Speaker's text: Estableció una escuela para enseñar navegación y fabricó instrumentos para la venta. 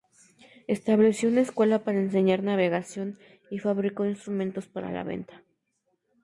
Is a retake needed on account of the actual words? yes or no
no